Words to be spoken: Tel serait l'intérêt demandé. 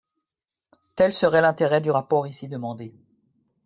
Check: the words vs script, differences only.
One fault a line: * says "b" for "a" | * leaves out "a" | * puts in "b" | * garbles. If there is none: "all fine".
* puts in "du rapport ici"